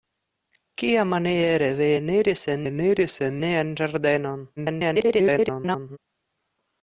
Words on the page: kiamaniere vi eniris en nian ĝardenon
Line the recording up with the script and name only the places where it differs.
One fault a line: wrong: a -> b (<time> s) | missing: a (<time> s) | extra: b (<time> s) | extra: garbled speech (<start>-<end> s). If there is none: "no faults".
extra: eniris en (2.7 s)
extra: garbled speech (4.6-6.0 s)